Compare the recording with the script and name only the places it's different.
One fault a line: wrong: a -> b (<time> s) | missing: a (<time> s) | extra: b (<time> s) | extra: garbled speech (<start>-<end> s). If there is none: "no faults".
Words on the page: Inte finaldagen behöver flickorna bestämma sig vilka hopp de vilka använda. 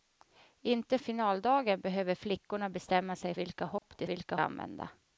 no faults